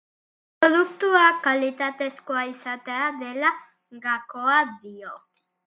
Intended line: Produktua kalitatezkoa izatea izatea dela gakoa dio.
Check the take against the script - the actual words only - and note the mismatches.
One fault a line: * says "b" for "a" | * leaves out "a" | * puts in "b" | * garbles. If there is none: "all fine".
* leaves out "izatea"